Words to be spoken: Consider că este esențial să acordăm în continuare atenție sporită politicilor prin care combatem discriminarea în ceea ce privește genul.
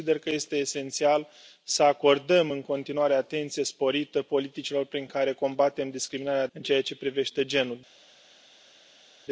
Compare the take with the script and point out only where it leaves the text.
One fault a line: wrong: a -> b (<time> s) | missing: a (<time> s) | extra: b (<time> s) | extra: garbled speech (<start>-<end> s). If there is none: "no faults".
no faults